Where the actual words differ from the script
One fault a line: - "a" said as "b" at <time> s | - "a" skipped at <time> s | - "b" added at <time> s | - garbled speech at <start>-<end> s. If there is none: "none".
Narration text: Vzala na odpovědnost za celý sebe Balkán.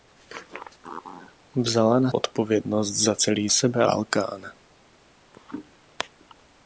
none